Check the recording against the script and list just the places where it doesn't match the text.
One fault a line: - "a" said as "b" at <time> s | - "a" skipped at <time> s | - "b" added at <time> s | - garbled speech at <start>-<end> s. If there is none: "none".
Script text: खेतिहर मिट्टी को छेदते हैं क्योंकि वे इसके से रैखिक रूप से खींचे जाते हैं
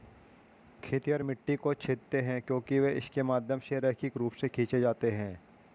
- "माध्यम" added at 3.2 s